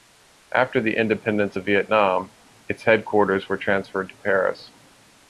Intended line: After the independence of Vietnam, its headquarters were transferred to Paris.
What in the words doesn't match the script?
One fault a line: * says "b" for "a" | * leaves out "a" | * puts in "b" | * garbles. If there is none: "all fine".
all fine